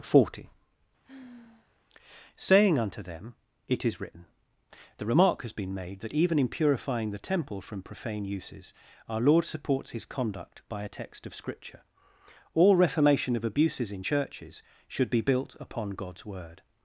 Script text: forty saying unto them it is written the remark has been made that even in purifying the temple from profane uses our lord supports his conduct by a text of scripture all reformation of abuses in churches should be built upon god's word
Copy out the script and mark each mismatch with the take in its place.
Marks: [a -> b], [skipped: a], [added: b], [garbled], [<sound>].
forty [sigh] saying unto them it is written the remark has been made that even in purifying the temple from profane uses our lord supports his conduct by a text of scripture all reformation of abuses in churches should be built upon god's word